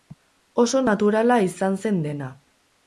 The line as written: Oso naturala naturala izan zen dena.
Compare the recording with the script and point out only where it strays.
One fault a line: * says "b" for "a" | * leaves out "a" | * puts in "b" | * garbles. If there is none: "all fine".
* leaves out "naturala"